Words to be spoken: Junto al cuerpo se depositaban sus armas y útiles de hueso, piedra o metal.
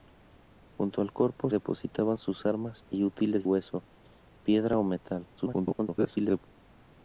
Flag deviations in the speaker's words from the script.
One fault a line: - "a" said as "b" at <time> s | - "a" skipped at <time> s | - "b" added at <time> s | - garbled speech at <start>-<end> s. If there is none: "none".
- "se" skipped at 1.5 s
- "de" skipped at 3.5 s
- garbled speech at 5.4-6.5 s